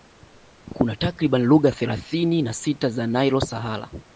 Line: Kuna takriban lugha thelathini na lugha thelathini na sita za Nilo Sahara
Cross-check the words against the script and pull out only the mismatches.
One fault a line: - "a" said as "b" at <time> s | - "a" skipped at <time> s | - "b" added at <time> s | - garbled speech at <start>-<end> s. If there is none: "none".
- "lugha thelathini na" skipped at 2.5 s